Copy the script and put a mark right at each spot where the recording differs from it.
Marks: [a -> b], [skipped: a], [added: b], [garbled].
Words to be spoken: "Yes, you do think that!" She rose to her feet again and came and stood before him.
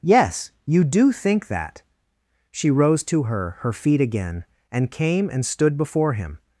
"Yes, you do think that!" She rose to her [added: her] feet again and came and stood before him.